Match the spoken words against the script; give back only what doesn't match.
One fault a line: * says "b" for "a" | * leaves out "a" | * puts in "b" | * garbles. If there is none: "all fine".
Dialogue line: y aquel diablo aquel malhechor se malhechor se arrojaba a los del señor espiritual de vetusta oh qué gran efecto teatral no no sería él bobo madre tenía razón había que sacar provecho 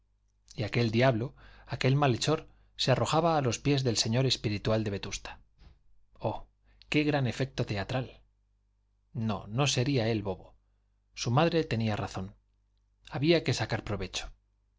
* leaves out "malhechor se"
* puts in "pies"
* puts in "su"